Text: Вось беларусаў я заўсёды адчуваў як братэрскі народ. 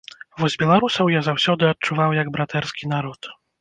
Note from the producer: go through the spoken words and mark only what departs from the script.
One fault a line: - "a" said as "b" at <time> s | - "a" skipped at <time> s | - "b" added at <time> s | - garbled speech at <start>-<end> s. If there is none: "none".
none